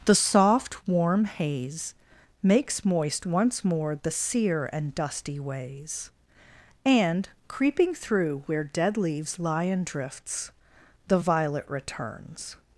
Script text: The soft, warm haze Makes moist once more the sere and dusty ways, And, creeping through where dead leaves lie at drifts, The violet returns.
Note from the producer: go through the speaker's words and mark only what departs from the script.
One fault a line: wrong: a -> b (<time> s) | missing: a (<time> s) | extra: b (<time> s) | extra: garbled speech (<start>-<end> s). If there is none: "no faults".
wrong: at -> in (9.7 s)